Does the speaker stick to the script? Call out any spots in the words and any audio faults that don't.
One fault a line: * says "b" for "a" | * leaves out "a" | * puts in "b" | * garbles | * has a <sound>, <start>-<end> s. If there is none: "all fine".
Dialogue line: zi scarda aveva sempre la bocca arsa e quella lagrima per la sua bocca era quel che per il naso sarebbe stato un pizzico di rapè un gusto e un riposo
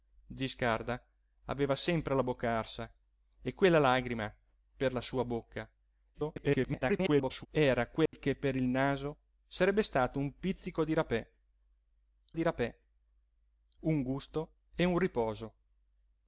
* garbles
* has a dropout, 8.1-8.1 s
* puts in "di rapè"